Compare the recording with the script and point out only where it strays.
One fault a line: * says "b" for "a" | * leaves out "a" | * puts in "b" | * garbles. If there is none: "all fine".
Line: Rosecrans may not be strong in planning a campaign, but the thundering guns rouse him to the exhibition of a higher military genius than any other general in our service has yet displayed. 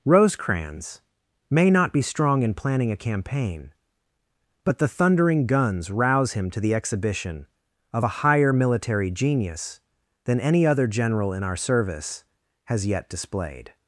all fine